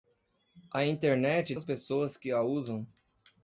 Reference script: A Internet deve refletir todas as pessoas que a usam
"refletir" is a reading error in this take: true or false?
true